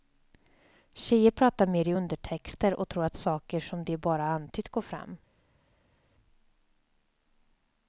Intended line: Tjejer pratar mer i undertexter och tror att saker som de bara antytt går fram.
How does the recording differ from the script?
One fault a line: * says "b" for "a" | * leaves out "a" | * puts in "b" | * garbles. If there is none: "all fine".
all fine